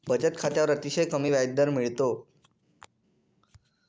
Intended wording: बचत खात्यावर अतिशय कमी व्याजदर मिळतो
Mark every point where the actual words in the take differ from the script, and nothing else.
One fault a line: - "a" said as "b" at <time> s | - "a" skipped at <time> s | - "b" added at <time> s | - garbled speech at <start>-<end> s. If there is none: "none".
none